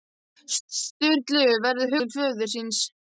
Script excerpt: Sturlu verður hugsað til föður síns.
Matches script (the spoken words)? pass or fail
fail